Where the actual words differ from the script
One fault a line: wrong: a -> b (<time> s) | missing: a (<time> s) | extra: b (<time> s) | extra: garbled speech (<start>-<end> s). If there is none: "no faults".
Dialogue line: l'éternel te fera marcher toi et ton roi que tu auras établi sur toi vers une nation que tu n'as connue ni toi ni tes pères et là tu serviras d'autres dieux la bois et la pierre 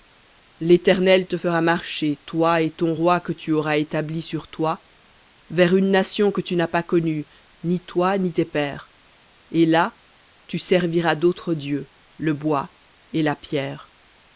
extra: pas (6.7 s)
wrong: la -> le (12.2 s)